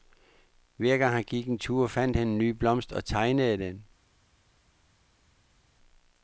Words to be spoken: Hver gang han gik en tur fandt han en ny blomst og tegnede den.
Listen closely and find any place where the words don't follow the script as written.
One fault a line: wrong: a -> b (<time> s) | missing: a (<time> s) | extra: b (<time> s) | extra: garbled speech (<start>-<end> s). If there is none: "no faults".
no faults